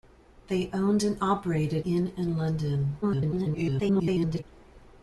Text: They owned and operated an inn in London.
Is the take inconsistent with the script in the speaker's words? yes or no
yes